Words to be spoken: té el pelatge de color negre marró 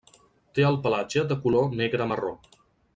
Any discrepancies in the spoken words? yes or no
no